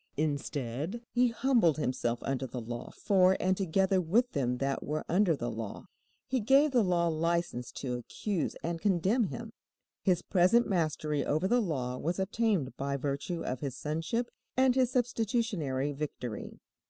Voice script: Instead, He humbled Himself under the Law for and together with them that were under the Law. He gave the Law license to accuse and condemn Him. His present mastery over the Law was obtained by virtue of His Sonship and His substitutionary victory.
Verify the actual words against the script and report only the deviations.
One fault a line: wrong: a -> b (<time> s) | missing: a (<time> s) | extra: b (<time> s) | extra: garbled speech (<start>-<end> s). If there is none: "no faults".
no faults